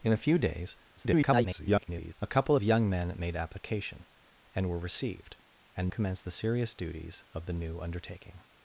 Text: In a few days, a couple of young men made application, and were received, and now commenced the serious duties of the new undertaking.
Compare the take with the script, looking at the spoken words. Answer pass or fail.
fail